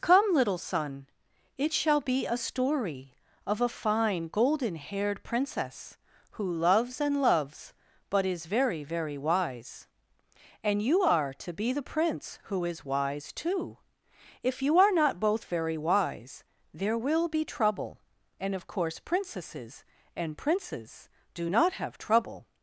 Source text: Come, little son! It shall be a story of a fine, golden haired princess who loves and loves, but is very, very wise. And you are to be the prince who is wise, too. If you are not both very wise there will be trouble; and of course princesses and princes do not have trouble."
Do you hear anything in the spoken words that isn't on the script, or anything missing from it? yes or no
no